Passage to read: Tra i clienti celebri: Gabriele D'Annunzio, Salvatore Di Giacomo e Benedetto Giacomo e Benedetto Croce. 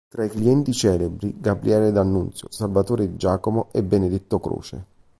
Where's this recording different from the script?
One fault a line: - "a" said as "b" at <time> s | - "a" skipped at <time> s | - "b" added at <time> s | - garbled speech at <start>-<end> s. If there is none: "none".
- "Giacomo e Benedetto" skipped at 4.4 s